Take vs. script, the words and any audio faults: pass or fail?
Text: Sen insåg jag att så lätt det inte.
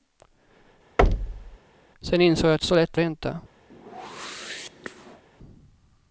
fail